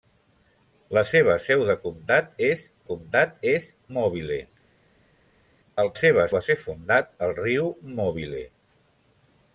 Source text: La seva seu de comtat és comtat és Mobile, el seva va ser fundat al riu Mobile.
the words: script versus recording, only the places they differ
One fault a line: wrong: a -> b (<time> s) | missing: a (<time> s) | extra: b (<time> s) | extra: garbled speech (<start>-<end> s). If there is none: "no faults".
no faults